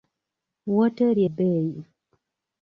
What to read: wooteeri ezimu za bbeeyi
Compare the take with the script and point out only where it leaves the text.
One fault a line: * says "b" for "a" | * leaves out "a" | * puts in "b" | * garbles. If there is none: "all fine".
* leaves out "ezimu za"